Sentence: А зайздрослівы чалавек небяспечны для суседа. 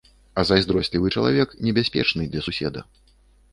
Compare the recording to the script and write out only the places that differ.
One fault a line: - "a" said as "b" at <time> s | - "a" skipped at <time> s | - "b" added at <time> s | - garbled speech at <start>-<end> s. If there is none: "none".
none